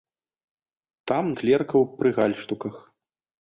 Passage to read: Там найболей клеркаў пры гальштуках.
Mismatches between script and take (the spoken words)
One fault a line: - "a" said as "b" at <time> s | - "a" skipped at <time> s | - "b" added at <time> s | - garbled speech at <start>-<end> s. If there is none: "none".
- "найболей" skipped at 1.2 s